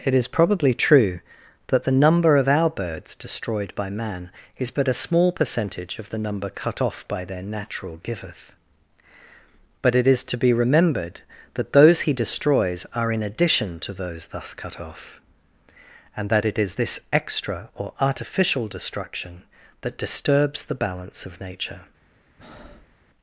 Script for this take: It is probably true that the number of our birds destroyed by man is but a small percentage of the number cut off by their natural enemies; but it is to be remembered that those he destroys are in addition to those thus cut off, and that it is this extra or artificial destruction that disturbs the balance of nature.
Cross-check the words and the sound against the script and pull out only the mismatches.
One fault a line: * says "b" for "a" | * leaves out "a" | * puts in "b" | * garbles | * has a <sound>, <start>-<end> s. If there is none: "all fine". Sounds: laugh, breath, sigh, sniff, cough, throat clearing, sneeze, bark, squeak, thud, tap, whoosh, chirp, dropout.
* says "giveth" for "enemies"
* has a breath, 22.4-23.0 s